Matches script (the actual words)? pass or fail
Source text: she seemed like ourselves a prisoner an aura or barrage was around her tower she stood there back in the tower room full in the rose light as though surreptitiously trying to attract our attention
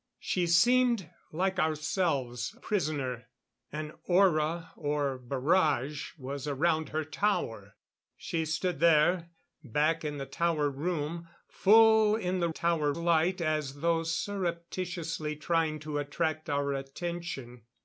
fail